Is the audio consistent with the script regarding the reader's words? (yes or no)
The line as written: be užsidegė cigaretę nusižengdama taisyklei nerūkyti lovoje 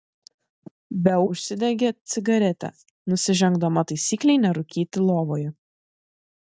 yes